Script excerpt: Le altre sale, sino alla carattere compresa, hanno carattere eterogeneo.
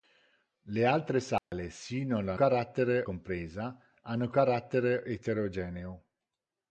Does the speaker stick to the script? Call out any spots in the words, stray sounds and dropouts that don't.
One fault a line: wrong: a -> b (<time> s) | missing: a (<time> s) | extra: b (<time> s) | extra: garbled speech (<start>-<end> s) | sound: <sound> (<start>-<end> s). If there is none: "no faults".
sound: dropout (1.4-1.5 s)